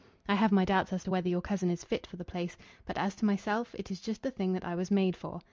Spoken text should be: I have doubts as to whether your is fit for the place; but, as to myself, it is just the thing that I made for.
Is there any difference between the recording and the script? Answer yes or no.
yes